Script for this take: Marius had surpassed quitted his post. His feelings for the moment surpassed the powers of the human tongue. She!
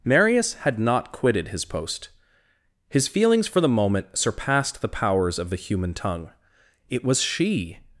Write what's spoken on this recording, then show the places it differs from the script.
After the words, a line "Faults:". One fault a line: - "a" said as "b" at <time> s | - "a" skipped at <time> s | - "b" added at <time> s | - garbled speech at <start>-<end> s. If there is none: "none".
Marius had not quitted his post. His feelings for the moment surpassed the powers of the human tongue. It was She!
Faults:
- "surpassed" said as "not" at 0.8 s
- "It was" added at 6.9 s